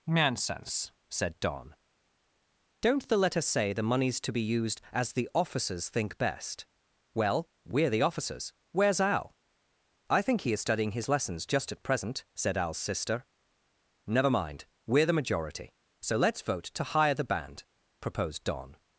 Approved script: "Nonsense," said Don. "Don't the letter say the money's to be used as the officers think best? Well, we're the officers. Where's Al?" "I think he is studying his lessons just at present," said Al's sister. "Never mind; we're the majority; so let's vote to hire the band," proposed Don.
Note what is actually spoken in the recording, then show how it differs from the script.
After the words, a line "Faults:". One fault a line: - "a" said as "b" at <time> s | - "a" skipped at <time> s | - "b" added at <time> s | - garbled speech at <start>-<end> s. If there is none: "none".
"Nonsense," said Don. "Don't the letter say the money's to be used as the officers think best? Well, we're the officers. Where's Al?" "I think he is studying his lessons just at present," said Al's sister. "Never mind; we're the majority; so let's vote to hire the band," proposed Don.
Faults:
none